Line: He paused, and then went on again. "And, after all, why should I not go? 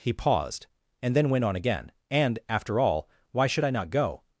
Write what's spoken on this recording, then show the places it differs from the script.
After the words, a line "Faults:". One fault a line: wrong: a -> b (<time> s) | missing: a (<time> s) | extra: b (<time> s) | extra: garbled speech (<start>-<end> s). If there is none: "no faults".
He paused, and then went on again. "And, after all, why should I not go?
Faults:
no faults